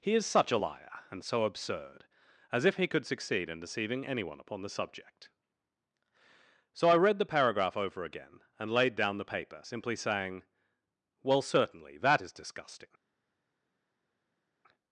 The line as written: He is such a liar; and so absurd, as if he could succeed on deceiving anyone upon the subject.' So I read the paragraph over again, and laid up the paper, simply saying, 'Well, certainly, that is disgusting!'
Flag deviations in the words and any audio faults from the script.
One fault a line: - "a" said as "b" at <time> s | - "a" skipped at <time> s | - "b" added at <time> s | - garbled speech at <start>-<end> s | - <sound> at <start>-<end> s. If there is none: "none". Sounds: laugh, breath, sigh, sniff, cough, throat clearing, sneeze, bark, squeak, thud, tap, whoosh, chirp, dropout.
- "on" said as "in" at 3.5 s
- "up" said as "down" at 8.9 s